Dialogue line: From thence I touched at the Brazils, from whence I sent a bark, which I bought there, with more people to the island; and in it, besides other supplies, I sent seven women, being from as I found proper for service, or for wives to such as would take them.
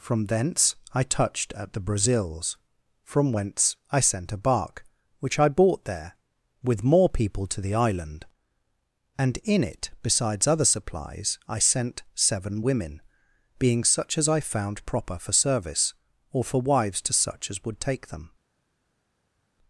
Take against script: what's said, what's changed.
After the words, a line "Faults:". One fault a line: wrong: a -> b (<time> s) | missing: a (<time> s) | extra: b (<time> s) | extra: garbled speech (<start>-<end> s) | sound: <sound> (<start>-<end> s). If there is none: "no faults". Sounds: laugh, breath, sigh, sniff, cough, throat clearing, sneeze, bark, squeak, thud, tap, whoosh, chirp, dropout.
From thence I touched at the Brazils, from whence I sent a bark, which I bought there, with more people to the island; and in it, besides other supplies, I sent seven women, being such as I found proper for service, or for wives to such as would take them.
Faults:
wrong: from -> such (13.8 s)